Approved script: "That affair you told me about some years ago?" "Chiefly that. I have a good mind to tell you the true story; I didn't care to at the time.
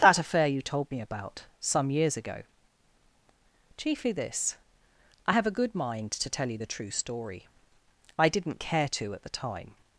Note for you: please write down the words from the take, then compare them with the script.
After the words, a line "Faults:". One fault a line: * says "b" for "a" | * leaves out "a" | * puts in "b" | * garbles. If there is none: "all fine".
"That affair you told me about some years ago?" "Chiefly this. I have a good mind to tell you the true story; I didn't care to at the time.
Faults:
* says "this" for "that"